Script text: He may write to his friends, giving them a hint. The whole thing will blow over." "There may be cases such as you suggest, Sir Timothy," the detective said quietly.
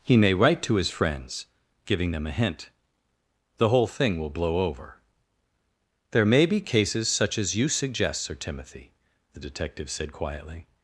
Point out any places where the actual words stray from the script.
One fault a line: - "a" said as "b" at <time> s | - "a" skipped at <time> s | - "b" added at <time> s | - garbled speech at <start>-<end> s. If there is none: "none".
none